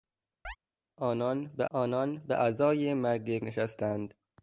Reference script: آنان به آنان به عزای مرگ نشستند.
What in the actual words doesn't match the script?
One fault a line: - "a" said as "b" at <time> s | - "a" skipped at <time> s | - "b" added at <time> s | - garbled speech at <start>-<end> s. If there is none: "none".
none